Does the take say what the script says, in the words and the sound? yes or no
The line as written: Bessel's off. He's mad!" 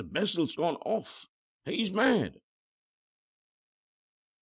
no